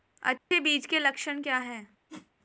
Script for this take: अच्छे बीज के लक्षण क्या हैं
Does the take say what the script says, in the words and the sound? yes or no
no